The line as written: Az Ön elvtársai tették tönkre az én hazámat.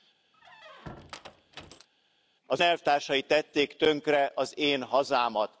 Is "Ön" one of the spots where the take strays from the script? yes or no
yes